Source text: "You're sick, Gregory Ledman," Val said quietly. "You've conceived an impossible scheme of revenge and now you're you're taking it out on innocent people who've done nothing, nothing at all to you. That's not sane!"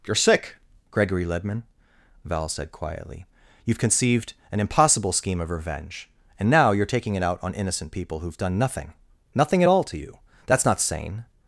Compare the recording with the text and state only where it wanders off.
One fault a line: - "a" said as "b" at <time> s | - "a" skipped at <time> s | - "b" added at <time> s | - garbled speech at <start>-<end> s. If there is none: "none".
- "you're" skipped at 6.9 s